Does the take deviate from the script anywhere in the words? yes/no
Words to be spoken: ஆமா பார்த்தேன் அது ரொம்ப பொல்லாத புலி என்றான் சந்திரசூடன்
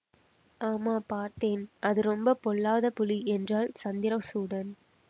no